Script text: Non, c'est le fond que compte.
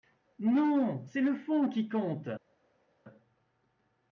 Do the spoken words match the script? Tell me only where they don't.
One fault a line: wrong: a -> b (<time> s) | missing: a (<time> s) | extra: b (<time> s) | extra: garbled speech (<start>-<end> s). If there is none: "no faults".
wrong: que -> qui (1.7 s)